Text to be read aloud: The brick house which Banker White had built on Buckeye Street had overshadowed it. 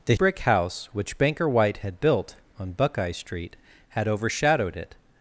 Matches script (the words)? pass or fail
pass